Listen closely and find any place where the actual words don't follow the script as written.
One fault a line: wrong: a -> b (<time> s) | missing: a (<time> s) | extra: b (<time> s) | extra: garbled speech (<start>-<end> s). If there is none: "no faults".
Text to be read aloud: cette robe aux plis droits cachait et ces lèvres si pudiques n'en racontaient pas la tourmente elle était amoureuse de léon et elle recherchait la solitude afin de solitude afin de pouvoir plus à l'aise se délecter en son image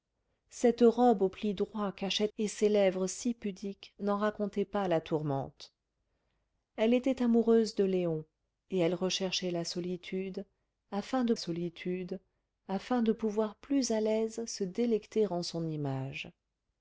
no faults